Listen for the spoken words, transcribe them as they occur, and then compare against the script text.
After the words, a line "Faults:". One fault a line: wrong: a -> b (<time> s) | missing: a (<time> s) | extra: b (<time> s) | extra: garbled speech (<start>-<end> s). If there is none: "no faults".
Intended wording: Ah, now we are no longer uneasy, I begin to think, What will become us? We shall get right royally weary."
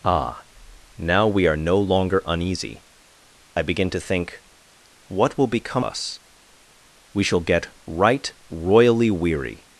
Ah, now we are no longer uneasy, I begin to think, What will become us? We shall get right royally weary."
Faults:
no faults